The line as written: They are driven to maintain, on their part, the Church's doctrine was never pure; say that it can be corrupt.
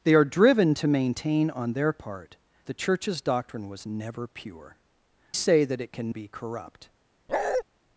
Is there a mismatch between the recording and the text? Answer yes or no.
no